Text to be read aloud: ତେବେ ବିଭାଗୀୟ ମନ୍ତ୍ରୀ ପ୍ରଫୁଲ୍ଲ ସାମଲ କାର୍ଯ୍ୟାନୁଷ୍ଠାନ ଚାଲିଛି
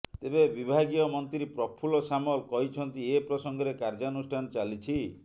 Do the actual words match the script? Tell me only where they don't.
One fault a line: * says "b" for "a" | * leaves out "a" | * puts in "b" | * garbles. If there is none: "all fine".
* puts in "କହିଛନ୍ତି ଏ ପ୍ରସଙ୍ଗରେ"